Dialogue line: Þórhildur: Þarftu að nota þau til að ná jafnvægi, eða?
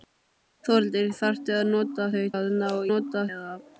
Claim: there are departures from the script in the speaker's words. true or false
true